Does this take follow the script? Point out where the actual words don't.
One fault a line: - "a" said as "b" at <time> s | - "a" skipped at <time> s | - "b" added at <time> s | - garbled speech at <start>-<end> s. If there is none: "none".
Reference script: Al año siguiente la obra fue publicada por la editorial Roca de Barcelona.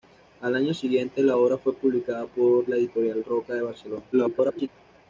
- garbled speech at 4.1-4.7 s